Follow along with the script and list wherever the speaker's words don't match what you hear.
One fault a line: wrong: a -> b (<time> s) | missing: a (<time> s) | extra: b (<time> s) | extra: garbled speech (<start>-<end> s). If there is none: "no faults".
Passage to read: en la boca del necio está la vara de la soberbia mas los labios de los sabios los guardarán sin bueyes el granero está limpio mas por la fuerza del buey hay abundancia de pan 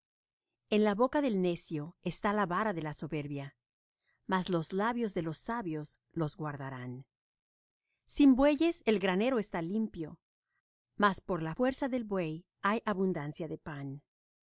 no faults